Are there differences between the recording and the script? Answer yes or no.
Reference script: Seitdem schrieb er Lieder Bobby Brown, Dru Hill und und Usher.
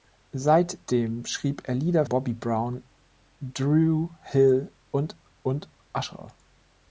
no